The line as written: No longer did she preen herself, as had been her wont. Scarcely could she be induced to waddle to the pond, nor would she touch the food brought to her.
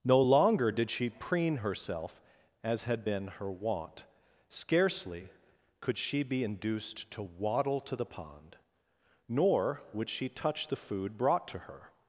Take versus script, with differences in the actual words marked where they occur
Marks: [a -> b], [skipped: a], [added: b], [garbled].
No longer did she preen herself, as had been her wont. Scarcely could she be induced to waddle to the pond, nor would she touch the food brought to her.